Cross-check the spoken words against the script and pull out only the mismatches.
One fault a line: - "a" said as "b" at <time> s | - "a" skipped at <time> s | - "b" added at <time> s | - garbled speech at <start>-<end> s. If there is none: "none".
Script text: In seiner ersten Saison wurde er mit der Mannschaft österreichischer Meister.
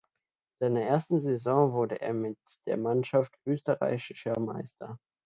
none